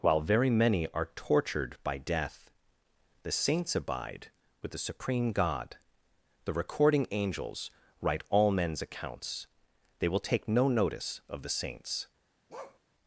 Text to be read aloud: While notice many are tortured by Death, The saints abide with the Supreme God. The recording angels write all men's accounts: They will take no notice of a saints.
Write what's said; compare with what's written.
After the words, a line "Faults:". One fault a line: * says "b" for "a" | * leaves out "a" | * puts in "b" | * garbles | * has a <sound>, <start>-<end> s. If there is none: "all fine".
While very many are tortured by Death, The saints abide with the Supreme God. The recording angels write all men's accounts: They will take no notice of the saints.
Faults:
* says "very" for "notice"
* says "the" for "a"
* has a bark, 12.5-12.8 s